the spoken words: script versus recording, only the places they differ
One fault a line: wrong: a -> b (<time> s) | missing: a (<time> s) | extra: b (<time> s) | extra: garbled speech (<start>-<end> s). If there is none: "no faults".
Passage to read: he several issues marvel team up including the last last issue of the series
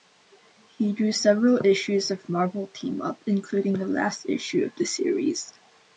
extra: drew (0.9 s)
extra: of (2.1 s)
missing: last (4.2 s)